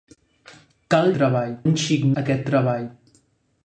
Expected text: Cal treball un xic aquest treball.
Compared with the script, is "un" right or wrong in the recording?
right